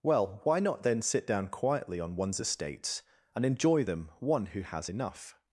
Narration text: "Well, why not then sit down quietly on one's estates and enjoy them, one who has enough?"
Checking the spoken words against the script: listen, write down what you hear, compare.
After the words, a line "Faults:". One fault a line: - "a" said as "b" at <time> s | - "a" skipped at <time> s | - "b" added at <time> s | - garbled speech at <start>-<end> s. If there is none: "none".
"Well, why not then sit down quietly on one's estates and enjoy them, one who has enough?"
Faults:
none